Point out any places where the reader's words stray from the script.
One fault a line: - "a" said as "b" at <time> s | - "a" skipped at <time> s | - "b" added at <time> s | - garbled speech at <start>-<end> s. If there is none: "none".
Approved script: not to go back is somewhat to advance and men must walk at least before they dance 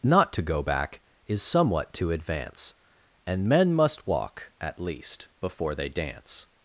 none